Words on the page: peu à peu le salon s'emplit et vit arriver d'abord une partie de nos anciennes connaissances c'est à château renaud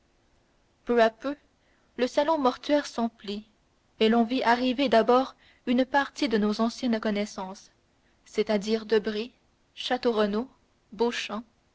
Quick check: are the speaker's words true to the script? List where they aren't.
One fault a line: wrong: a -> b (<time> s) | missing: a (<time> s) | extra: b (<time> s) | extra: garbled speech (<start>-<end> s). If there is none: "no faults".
extra: mortuaire (2.4 s)
extra: l'on (4.1 s)
extra: dire debray (8.6 s)